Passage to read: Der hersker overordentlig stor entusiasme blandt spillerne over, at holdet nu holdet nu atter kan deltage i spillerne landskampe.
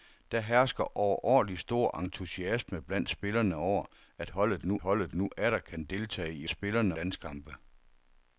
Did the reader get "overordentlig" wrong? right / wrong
right